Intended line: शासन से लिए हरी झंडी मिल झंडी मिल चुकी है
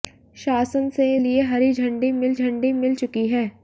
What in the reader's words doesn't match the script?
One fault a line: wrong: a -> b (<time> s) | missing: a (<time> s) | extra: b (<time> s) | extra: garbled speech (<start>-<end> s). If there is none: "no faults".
no faults